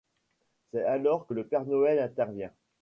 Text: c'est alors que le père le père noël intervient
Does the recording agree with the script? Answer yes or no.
no